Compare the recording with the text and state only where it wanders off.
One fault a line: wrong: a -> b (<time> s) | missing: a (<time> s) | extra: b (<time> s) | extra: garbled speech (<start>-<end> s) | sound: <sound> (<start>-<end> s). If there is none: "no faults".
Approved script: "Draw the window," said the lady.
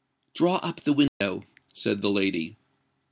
extra: up (0.6 s)
sound: dropout (1.1-1.2 s)